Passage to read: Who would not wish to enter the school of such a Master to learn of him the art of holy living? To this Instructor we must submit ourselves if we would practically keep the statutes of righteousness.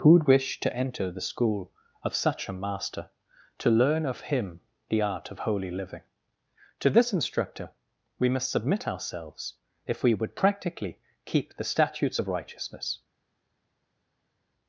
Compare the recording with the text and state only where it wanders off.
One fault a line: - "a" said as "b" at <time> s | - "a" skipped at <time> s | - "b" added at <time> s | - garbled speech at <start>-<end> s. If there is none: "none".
- "not" skipped at 0.2 s